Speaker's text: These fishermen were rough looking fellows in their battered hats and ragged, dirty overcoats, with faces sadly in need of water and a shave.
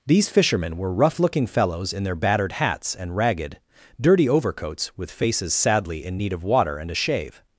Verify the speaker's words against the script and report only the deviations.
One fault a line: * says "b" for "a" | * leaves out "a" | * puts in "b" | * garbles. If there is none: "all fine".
all fine